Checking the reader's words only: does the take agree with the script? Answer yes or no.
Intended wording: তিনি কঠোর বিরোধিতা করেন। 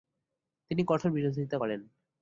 yes